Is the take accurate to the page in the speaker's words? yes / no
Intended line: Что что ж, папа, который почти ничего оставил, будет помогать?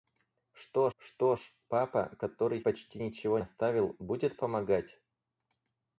yes